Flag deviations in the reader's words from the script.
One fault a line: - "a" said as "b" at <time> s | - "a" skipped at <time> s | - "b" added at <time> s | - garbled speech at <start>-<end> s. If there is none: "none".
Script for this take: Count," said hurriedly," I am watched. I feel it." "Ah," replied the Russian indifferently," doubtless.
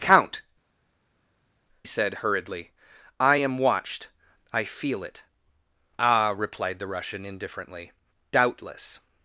none